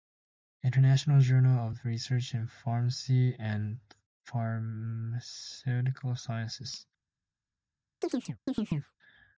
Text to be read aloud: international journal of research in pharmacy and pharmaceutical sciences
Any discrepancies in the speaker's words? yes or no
no